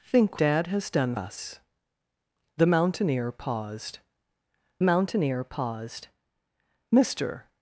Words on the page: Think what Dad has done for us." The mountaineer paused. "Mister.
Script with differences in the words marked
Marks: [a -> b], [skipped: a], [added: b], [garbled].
Think [skipped: what] Dad has done [skipped: for] us." The mountaineer paused. [added: mountaineer paused] "Mister.